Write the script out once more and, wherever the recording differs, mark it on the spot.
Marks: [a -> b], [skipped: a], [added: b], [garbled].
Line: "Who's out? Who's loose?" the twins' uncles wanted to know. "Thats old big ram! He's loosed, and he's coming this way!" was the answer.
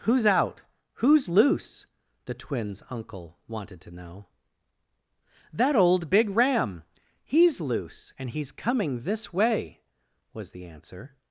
"Who's out? Who's loose?" the twins' [uncles -> uncle] wanted to know. ["Thats -> That] old big ram! He's [loosed, -> loose] and he's coming this way!" was the answer.